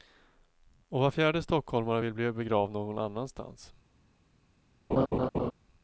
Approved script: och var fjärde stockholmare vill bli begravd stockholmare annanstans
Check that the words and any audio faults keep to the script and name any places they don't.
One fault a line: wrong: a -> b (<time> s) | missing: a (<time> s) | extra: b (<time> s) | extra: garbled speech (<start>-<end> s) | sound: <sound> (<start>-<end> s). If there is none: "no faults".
wrong: stockholmare -> någon (2.7 s)
sound: laugh (4.9-5.5 s)